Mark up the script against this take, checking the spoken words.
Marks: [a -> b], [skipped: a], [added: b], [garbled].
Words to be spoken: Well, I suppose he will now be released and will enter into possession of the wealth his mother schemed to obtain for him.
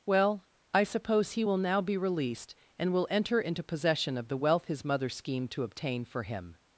Well, I suppose he will now be released and will enter into possession of the wealth his mother schemed to obtain for him.